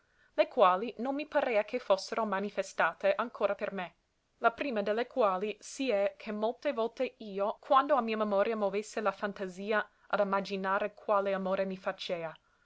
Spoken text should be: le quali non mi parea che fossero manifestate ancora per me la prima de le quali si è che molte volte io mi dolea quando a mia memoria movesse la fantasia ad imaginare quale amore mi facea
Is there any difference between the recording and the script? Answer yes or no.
yes